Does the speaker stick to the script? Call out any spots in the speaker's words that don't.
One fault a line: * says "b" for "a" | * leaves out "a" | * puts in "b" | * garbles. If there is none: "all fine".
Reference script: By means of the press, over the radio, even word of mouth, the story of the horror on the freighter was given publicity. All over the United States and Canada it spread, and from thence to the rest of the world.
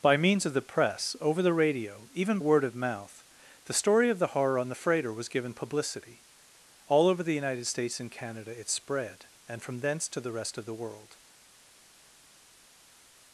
all fine